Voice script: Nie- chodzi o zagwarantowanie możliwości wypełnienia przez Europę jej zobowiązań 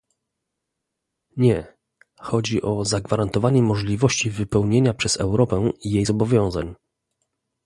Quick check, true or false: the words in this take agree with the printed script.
true